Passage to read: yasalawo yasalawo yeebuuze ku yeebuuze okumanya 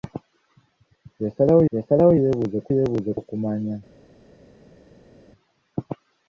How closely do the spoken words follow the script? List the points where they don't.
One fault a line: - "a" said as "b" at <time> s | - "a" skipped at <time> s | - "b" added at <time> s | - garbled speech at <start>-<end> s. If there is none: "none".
none